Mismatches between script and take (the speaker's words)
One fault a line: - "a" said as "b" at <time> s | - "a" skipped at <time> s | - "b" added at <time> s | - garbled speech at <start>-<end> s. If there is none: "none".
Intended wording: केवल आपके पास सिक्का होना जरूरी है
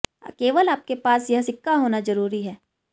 - "यह" added at 1.3 s